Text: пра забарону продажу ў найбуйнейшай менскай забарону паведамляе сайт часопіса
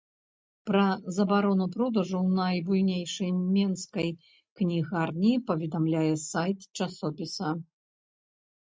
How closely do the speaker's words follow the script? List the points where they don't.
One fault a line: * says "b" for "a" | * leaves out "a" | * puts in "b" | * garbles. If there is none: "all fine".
* says "кнігарні" for "забарону"